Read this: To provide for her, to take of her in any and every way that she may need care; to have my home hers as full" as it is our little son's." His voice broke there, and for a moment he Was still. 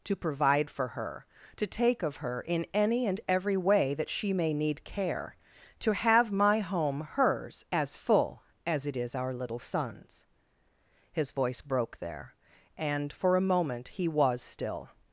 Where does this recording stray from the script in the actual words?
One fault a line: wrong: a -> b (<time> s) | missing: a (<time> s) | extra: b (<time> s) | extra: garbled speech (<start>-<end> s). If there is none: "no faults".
no faults